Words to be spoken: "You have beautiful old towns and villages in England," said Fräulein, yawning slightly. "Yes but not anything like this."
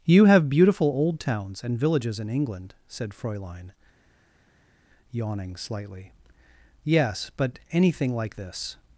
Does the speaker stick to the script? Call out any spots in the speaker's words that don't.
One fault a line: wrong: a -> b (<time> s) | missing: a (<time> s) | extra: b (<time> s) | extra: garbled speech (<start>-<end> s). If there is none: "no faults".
missing: not (7.6 s)